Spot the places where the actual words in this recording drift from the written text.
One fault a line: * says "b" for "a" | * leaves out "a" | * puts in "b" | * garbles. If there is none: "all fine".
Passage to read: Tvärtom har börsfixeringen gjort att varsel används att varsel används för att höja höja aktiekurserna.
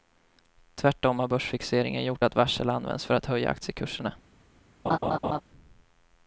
* leaves out "att varsel används"
* leaves out "höja"